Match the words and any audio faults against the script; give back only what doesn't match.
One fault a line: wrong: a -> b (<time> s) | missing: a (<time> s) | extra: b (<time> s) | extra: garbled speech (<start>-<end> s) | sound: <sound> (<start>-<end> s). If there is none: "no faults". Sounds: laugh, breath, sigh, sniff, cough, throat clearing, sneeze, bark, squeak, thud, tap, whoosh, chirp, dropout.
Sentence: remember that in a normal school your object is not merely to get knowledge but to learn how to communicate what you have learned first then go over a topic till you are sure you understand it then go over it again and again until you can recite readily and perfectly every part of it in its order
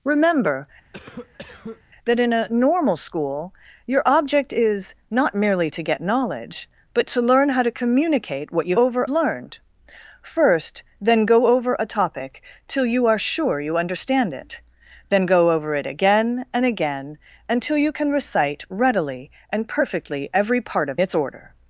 sound: cough (0.9-1.8 s)
wrong: have -> over (8.8 s)
missing: it in (21.0 s)